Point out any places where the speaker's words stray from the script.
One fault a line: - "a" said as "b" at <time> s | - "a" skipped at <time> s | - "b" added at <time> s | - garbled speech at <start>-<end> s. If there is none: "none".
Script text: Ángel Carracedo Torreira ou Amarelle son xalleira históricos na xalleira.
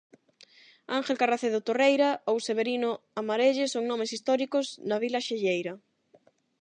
- "Severino" added at 2.5 s
- "xalleira" said as "nomes" at 3.9 s
- "vila" added at 5.0 s